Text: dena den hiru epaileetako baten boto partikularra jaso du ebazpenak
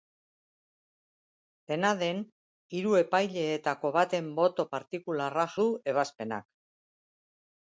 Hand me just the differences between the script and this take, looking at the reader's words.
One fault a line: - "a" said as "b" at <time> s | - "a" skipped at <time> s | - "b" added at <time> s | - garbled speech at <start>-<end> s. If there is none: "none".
- "jaso" skipped at 5.5 s